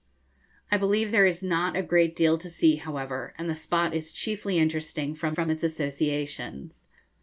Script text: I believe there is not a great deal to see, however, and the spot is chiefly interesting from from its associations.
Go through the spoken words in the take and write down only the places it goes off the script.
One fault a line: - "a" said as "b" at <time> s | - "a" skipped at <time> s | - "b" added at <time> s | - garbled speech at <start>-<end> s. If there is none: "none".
none